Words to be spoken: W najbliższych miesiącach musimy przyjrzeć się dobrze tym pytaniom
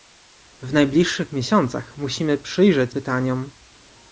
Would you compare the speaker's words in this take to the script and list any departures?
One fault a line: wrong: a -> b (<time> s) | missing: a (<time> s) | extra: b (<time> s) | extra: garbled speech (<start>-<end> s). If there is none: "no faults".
missing: się dobrze tym (3.0 s)